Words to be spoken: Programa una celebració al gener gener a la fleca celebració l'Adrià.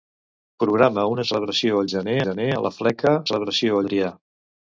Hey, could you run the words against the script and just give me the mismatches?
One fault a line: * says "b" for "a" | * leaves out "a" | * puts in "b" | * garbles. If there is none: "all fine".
all fine